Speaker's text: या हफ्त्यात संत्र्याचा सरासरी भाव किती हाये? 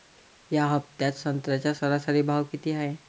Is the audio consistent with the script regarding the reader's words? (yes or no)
yes